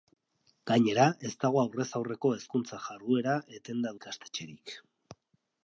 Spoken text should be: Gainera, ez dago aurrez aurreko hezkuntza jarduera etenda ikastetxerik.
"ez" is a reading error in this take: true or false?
false